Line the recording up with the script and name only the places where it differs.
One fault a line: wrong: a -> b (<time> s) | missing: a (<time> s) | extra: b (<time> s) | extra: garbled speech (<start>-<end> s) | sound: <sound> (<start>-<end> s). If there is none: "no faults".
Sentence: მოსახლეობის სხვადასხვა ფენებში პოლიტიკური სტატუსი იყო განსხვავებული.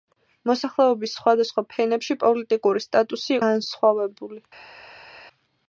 missing: იყო (3.4 s)